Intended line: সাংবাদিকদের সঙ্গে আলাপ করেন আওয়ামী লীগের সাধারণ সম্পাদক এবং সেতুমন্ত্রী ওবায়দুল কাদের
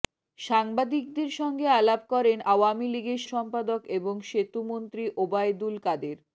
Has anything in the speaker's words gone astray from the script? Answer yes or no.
yes